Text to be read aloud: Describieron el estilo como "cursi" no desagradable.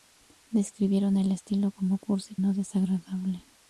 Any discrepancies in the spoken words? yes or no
no